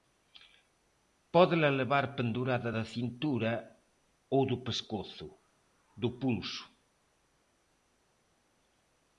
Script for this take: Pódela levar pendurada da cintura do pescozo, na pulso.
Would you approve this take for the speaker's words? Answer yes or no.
no